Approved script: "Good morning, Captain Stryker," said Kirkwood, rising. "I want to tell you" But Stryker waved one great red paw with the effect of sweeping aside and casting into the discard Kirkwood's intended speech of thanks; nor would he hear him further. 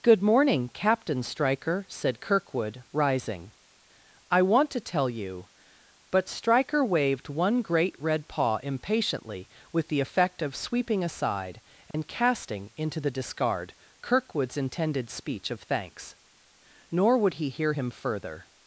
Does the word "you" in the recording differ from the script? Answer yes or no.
no